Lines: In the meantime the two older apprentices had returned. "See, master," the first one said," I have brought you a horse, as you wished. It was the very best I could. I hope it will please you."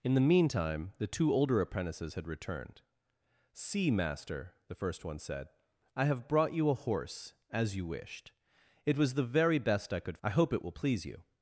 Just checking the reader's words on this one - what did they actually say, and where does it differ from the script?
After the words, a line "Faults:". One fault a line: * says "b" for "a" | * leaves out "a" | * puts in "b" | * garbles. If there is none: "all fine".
In the meantime the two older apprentices had returned. "See, master," the first one said," I have brought you a horse, as you wished. It was the very best I could. I hope it will please you."
Faults:
all fine